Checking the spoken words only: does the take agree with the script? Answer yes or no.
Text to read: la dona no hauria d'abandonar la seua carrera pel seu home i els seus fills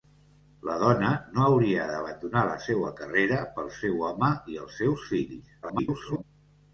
no